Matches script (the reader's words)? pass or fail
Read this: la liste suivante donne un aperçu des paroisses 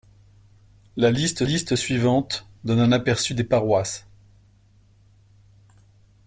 fail